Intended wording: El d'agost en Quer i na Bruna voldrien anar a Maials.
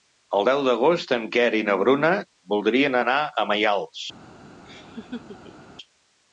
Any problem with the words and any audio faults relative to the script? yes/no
yes